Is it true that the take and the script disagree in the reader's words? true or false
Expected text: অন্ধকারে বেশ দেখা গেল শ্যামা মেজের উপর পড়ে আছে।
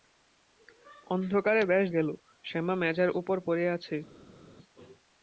true